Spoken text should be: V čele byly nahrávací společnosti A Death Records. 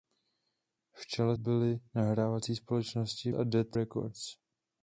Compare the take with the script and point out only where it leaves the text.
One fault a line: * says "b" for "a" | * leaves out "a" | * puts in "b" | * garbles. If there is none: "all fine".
all fine